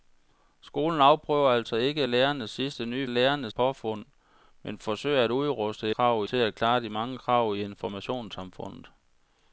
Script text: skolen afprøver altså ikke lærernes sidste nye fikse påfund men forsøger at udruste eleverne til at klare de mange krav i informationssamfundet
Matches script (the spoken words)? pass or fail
fail